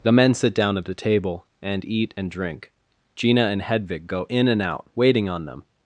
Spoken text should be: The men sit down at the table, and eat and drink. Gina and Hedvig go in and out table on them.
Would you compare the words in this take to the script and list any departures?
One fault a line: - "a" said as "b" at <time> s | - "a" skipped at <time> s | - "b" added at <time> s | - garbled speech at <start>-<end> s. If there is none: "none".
- "table" said as "waiting" at 5.0 s